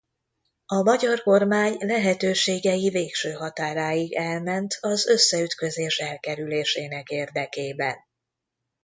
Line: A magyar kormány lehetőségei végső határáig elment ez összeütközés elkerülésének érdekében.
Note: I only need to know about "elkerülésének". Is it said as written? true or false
true